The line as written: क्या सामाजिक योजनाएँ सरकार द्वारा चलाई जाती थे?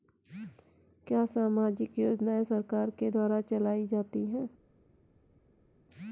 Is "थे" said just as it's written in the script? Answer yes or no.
no